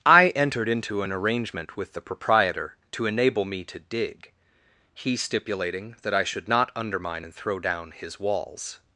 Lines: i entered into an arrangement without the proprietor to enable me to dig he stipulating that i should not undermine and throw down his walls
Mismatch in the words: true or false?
true